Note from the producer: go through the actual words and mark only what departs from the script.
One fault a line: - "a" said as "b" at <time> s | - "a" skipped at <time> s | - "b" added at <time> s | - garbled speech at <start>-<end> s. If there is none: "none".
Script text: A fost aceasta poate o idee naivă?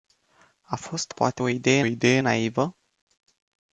- "aceasta" skipped at 1.1 s
- "idee" added at 1.8 s